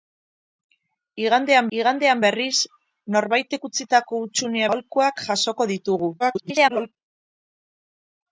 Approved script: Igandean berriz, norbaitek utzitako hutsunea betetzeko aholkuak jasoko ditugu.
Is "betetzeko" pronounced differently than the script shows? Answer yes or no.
yes